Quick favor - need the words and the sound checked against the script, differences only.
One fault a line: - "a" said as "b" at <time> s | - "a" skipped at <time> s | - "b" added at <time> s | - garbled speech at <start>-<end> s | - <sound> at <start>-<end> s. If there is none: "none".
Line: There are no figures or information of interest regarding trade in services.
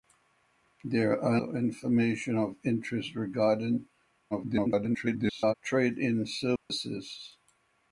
- "no figures" skipped at 1.4 s
- garbled speech at 4.3-5.5 s
- dropout at 6.6-6.7 s